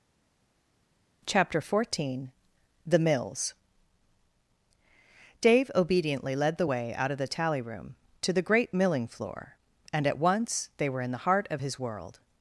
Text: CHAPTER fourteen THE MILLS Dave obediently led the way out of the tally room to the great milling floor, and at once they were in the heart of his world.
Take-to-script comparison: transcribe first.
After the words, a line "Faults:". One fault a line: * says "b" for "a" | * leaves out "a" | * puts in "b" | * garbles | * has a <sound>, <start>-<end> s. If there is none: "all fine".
CHAPTER fourteen THE MILLS Dave obediently led the way out of the tally room to the great milling floor, and at once they were in the heart of his world.
Faults:
all fine